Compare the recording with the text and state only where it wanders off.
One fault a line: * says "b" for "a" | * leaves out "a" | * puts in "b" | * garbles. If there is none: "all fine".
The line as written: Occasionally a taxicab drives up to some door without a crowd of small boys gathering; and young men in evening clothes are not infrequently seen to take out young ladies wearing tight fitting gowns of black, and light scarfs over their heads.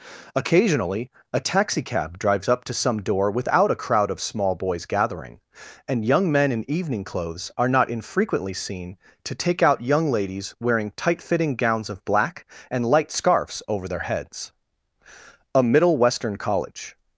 * puts in "A Middle Western college"